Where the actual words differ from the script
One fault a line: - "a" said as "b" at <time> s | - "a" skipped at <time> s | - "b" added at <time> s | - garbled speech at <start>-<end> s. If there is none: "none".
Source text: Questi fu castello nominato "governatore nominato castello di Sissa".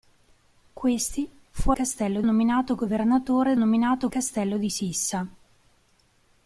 none